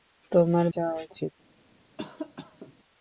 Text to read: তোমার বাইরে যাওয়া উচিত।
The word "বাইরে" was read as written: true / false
false